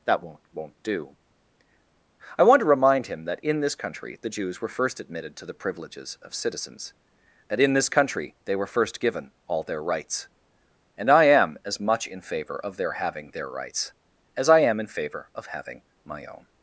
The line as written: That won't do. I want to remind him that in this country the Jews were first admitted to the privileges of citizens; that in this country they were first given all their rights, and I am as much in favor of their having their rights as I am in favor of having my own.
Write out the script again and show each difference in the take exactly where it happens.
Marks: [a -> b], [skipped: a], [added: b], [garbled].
That won't [added: won't] do. I want to remind him that in this country the Jews were first admitted to the privileges of citizens; that in this country they were first given all their rights, and I am as much in favor of their having their rights as I am in favor of having my own.